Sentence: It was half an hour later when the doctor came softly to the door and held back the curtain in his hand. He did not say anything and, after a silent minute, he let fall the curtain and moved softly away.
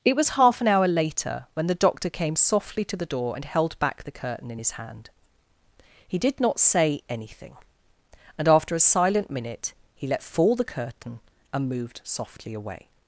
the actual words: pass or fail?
pass